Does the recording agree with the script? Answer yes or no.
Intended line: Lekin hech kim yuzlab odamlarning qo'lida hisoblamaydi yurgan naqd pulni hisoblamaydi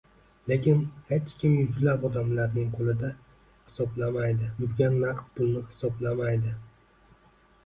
yes